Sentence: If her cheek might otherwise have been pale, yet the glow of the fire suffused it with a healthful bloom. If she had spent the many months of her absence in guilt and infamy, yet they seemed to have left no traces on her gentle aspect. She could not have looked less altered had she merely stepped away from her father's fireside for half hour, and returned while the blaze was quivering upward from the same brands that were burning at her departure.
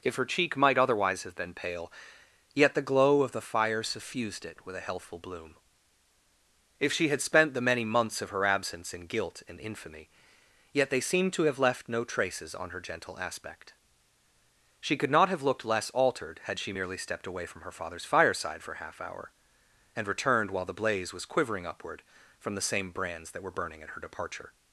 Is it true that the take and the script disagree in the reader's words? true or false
false